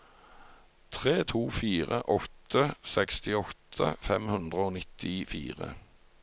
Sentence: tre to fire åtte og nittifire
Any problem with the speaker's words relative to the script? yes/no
yes